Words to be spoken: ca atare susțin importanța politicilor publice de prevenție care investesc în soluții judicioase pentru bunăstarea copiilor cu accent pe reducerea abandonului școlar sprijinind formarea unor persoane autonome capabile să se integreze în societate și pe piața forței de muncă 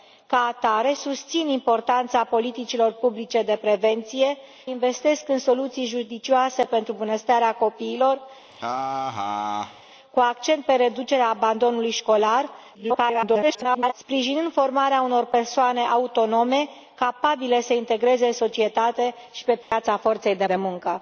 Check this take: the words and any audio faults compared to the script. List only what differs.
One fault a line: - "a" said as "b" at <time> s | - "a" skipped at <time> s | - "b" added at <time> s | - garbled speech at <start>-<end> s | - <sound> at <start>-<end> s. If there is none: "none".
- "care" skipped at 4.4 s
- laugh at 8.5-9.8 s
- garbled speech at 12.7-13.9 s
- dropout at 19.6-19.7 s
- "de" added at 20.4 s